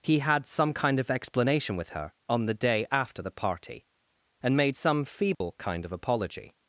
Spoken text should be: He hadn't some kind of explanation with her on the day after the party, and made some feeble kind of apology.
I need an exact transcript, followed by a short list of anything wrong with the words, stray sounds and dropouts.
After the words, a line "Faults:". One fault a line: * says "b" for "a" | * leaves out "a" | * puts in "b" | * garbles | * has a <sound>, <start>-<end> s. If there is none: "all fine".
He had some kind of explanation with her on the day after the party, and made some feeble kind of apology.
Faults:
* says "had" for "hadn't"
* has a dropout, 5.3-5.4 s